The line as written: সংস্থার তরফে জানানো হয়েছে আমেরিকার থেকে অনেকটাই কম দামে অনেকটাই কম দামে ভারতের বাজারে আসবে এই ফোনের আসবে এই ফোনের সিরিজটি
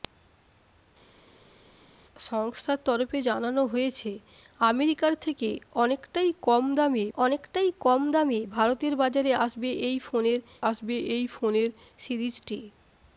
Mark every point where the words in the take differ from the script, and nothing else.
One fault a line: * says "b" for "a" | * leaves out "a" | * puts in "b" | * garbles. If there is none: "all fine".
all fine